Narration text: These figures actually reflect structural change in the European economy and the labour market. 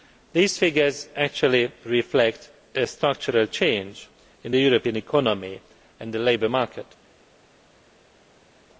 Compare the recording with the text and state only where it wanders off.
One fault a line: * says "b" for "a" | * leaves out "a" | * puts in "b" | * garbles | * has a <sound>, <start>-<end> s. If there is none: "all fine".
* puts in "a"